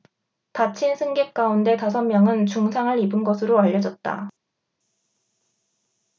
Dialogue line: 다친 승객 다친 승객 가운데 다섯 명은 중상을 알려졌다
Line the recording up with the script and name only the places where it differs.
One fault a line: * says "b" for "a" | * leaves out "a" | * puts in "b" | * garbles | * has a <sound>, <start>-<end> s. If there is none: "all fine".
* leaves out "다친 승객"
* puts in "입은 것으로"